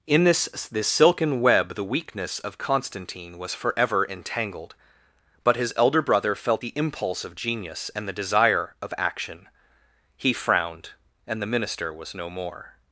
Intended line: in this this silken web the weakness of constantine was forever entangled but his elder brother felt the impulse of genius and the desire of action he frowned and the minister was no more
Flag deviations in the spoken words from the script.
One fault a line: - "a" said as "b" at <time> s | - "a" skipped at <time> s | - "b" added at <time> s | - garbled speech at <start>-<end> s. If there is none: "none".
none